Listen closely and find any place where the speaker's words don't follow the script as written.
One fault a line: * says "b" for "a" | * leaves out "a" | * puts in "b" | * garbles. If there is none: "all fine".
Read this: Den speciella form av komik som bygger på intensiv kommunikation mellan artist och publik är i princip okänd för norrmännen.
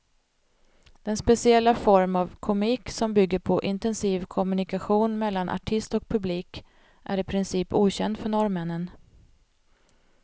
all fine